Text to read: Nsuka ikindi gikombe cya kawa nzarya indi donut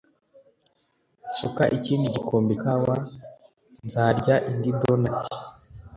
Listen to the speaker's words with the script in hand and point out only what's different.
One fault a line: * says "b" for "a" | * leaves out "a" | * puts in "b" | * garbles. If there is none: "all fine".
* leaves out "cya"